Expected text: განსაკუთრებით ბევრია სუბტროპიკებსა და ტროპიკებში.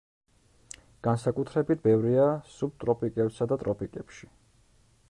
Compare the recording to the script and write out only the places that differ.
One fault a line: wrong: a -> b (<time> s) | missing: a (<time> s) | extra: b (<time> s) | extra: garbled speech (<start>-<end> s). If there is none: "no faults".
no faults